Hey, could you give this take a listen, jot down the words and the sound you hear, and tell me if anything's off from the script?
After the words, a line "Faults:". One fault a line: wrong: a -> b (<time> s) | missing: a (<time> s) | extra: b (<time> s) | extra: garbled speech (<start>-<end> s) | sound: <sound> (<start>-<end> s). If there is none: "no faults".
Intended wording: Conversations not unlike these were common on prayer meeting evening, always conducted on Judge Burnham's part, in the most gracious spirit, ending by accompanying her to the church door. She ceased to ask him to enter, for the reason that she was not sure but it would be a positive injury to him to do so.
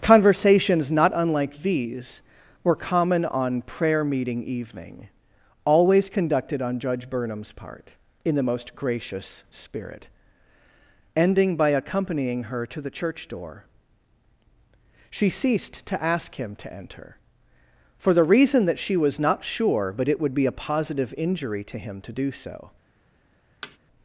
Conversations not unlike these were common on prayer meeting evening, always conducted on Judge Burnham's part, in the most gracious spirit, ending by accompanying her to the church door. She ceased to ask him to enter, for the reason that she was not sure but it would be a positive injury to him to do so.
Faults:
sound: thud (23.6-23.8 s)